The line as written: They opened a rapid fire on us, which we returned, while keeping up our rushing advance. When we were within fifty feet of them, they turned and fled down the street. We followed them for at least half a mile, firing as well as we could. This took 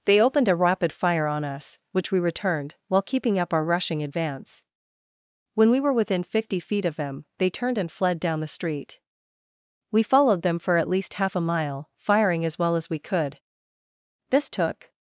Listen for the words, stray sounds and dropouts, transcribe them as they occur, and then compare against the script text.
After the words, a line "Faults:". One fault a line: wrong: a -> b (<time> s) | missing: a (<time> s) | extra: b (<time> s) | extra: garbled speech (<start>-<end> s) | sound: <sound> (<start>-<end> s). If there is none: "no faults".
They opened a rapid fire on us, which we returned, while keeping up our rushing advance. When we were within fifty feet of them, they turned and fled down the street. We followed them for at least half a mile, firing as well as we could. This took
Faults:
no faults